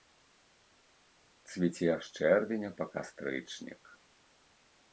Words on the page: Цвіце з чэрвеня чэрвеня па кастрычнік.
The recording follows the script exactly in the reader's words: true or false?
false